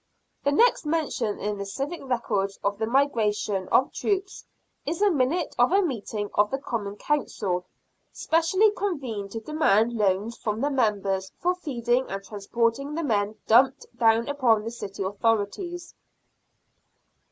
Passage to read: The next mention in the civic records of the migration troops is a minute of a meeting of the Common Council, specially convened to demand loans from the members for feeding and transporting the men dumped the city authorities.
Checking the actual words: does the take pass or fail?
fail